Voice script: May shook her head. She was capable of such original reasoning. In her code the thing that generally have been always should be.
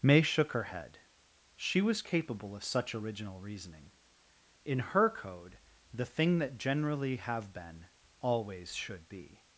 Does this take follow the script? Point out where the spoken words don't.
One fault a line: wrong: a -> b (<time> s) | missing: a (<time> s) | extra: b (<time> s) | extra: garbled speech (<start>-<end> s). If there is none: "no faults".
no faults